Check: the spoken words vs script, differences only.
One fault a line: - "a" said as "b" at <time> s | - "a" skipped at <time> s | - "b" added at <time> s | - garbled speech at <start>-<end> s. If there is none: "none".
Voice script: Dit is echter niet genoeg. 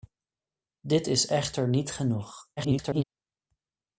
- garbled speech at 2.6-3.0 s